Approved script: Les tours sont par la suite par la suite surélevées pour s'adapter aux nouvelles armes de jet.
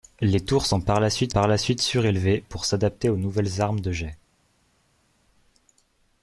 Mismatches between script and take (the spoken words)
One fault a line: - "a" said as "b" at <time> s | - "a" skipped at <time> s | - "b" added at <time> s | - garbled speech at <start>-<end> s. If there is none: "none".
none